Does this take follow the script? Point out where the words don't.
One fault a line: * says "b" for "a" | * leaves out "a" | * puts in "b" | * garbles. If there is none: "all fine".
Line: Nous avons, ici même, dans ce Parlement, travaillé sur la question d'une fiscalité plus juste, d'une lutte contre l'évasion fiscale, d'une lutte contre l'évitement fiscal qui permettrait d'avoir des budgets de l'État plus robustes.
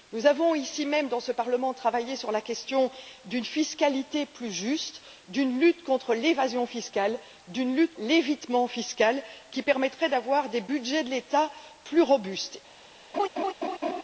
* leaves out "contre"